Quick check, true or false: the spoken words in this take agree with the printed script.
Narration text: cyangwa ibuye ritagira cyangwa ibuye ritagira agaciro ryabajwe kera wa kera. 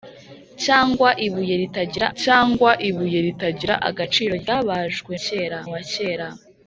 true